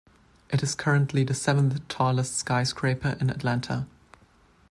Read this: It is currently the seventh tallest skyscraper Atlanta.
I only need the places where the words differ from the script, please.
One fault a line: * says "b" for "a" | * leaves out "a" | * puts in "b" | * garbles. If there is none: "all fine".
* puts in "in"